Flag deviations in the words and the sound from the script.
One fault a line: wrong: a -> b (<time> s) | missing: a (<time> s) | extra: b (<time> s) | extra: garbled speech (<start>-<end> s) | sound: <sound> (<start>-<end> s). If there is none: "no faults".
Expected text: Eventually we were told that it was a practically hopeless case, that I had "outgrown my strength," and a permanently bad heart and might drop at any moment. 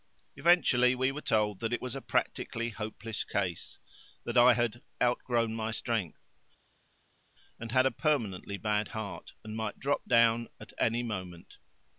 extra: had (7.7 s)
extra: down (10.1 s)